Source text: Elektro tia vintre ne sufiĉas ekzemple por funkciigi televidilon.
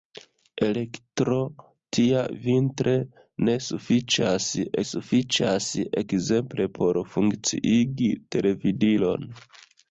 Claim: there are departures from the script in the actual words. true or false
true